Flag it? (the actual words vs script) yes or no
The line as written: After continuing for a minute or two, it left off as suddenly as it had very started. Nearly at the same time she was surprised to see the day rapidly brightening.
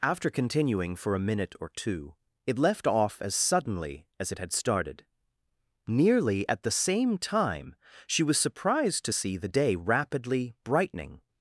yes